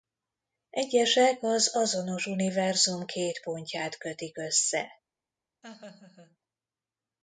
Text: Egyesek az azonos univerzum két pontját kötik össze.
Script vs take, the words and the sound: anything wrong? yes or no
yes